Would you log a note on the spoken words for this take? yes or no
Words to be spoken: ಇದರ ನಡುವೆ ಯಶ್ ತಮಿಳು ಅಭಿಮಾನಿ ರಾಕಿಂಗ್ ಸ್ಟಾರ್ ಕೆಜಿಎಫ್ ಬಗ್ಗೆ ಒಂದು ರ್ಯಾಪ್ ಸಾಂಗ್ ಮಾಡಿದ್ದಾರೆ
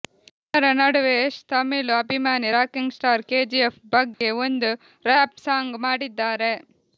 no